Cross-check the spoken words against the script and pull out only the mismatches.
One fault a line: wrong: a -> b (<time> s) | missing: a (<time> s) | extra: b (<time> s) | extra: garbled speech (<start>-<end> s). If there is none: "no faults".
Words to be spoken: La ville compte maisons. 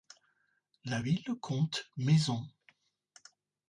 no faults